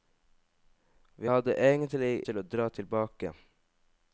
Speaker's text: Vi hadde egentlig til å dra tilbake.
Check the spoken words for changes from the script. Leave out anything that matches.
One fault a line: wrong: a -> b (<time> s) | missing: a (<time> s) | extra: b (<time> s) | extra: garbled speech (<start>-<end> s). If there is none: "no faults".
no faults